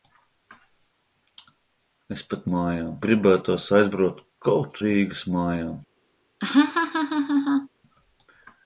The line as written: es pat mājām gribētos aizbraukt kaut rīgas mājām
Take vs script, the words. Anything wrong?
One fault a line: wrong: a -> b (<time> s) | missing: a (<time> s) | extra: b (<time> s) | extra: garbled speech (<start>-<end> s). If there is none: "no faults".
no faults